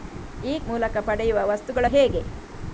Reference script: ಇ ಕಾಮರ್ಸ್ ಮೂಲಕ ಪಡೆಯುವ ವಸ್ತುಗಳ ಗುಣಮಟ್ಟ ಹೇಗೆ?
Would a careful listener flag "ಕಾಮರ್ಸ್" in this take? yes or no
yes